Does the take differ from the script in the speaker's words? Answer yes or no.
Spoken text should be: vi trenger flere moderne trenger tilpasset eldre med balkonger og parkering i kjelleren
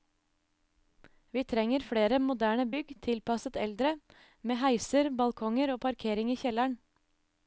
yes